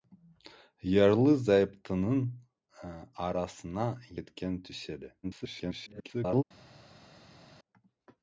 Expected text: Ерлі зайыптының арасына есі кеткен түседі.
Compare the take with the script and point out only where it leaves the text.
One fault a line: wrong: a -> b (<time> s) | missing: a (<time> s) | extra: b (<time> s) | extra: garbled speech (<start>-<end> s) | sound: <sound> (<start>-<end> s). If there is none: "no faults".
missing: есі (3.9 s)
extra: garbled speech (5.2-6.4 s)